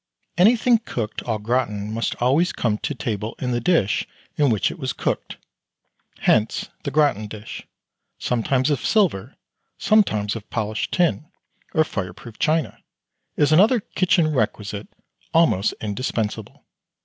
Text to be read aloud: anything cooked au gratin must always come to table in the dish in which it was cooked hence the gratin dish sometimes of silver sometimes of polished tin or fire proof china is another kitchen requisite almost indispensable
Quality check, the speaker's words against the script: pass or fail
pass